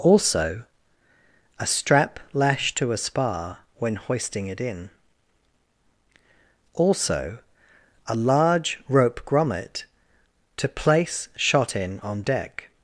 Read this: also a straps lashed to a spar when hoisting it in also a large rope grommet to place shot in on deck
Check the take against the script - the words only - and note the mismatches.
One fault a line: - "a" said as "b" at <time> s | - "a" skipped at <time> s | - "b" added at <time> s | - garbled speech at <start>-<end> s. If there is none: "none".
- "straps" said as "strap" at 1.7 s